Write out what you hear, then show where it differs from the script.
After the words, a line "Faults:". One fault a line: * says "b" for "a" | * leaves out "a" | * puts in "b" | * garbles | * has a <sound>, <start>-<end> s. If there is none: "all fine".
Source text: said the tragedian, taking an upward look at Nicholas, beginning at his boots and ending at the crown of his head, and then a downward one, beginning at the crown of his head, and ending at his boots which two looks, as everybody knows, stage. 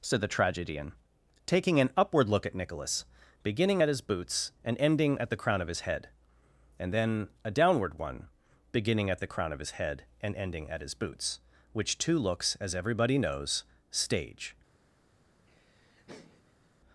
said the tragedian, taking an upward look at Nicholas, beginning at his boots and ending at the crown of his head, and then a downward one, beginning at the crown of his head, and ending at his boots which two looks, as everybody knows, stage.
Faults:
* has a laugh, 15.5-16.7 s